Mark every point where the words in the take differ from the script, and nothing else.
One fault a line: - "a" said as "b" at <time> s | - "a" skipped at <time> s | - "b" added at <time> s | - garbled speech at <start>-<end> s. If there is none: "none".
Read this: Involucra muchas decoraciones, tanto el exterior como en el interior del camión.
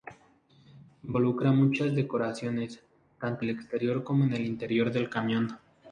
none